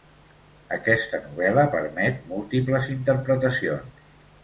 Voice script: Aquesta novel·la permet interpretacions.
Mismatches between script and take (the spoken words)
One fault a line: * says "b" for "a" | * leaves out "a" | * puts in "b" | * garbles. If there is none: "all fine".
* puts in "múltiples"